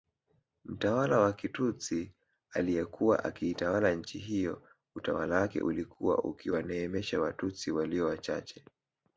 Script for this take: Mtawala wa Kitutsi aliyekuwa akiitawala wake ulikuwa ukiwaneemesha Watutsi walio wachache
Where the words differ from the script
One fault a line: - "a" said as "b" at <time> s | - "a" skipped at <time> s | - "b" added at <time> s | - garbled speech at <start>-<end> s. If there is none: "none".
- "nchi hiyo utawala" added at 4.0 s